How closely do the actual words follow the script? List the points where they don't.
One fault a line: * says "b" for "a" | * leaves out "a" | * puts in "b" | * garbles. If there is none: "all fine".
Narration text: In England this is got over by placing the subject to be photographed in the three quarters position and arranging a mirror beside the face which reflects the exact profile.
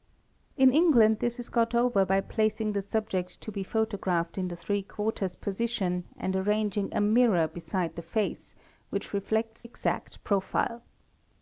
* leaves out "the"